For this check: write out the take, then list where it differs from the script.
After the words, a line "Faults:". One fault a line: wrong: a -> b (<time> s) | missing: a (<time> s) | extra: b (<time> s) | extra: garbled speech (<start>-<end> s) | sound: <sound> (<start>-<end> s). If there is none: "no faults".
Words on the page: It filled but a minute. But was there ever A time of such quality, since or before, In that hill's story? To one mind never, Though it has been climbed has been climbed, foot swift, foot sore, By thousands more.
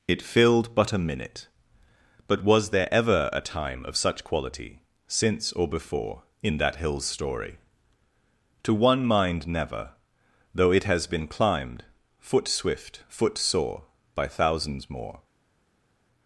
It filled but a minute. But was there ever A time of such quality, since or before, In that hill's story? To one mind never, Though it has been climbed, foot swift, foot sore, By thousands more.
Faults:
missing: has been climbed (11.8 s)